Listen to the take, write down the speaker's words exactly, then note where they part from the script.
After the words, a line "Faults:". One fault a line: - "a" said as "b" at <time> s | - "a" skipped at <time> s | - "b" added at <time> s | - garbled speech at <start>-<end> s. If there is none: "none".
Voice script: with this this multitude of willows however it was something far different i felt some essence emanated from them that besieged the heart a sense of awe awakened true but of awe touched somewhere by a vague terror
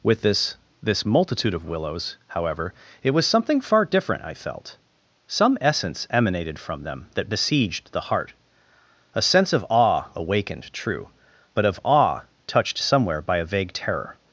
with this this multitude of willows however it was something far different i felt some essence emanated from them that besieged the heart a sense of awe awakened true but of awe touched somewhere by a vague terror
Faults:
none